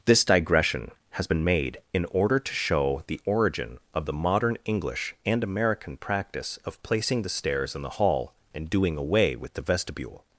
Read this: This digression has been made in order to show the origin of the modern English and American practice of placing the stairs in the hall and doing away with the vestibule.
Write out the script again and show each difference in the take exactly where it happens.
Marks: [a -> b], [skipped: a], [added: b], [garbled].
This digression has been made in order to show the origin of the modern English and American practice of placing the stairs in the hall and doing away with the vestibule.